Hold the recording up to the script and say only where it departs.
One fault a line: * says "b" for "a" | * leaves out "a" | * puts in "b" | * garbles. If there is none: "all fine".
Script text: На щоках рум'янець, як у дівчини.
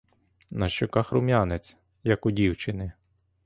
all fine